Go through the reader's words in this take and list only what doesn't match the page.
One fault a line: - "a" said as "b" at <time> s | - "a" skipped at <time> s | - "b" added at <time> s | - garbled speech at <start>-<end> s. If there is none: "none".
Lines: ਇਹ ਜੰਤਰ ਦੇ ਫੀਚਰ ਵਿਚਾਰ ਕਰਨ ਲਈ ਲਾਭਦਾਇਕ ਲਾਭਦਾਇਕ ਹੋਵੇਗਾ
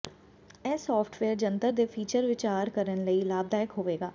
- "ਸਾਫਟਵੇਅਰ" added at 0.8 s
- "ਲਾਭਦਾਇਕ" skipped at 3.8 s